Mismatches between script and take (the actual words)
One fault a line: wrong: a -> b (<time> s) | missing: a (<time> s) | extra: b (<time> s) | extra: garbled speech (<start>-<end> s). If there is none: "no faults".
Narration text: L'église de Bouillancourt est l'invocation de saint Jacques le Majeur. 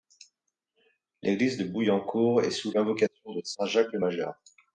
extra: sous (2.5 s)